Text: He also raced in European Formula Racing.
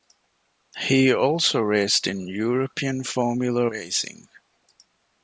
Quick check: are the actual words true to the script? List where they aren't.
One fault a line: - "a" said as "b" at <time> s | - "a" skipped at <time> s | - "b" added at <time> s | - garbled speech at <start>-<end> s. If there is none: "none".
none